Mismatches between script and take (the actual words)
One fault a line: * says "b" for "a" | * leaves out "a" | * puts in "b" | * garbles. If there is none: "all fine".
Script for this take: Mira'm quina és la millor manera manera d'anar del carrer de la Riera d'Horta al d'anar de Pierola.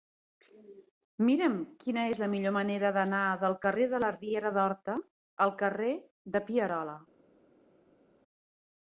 * leaves out "manera"
* says "carrer" for "d'anar"